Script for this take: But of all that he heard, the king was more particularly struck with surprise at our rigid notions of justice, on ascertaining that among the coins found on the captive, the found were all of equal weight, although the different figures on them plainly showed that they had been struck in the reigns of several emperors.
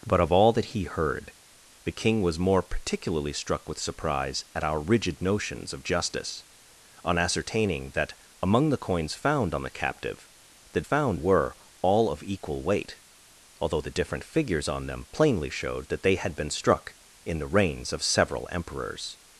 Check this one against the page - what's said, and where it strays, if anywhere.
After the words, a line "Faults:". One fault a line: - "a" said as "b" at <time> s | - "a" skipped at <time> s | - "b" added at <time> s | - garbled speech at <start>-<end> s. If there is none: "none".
But of all that he heard, the king was more particularly struck with surprise at our rigid notions of justice, on ascertaining that among the coins found on the captive, the found were all of equal weight, although the different figures on them plainly showed that they had been struck in the reigns of several emperors.
Faults:
none